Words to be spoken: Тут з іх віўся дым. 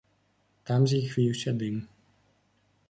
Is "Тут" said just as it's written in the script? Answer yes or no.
no